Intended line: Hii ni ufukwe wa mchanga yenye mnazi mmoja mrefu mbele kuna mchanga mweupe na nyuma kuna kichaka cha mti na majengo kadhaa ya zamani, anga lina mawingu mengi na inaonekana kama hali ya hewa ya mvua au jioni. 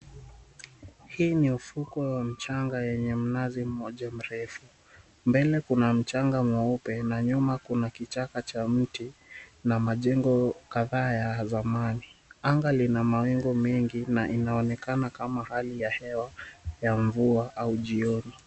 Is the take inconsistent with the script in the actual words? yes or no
no